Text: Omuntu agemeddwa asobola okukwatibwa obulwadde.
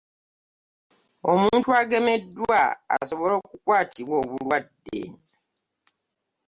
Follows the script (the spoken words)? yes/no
yes